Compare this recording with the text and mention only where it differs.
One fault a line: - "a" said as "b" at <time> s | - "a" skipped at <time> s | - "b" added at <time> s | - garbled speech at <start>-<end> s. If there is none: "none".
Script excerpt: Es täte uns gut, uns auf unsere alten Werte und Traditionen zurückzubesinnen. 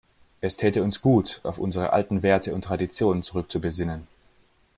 - "uns" skipped at 1.4 s